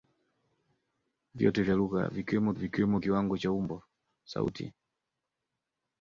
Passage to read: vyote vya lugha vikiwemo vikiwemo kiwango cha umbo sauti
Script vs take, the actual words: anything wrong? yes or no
no